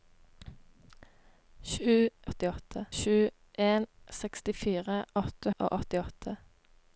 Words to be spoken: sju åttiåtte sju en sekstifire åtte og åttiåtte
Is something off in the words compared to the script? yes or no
no